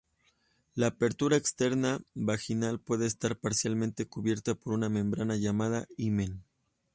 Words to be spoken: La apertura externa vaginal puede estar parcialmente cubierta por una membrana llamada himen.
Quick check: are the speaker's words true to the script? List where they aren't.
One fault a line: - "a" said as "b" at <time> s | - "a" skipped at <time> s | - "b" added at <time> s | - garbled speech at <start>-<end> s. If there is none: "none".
none